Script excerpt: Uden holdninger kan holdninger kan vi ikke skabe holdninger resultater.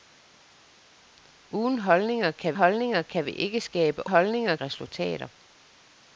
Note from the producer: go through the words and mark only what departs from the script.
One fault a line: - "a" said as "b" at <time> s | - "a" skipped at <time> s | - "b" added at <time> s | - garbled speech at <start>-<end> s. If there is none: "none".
none